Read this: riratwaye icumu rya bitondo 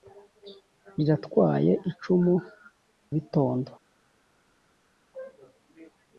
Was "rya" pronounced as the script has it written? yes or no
no